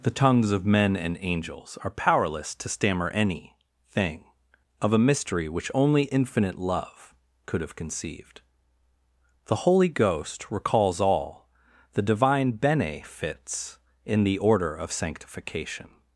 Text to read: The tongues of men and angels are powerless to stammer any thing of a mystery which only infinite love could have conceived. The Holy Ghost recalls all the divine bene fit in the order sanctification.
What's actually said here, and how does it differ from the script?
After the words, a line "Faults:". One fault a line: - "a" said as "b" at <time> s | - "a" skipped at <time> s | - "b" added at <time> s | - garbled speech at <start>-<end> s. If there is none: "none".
The tongues of men and angels are powerless to stammer any thing of a mystery which only infinite love could have conceived. The Holy Ghost recalls all the divine bene fits in the order of sanctification.
Faults:
- "fit" said as "fits" at 13.0 s
- "of" added at 14.7 s